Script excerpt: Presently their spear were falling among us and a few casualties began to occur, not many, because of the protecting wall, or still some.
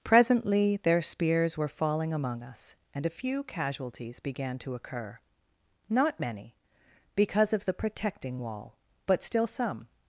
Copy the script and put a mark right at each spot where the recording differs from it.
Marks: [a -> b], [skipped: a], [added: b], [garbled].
Presently their [spear -> spears] were falling among us and a few casualties began to occur, not many, because of the protecting wall, [or -> but] still some.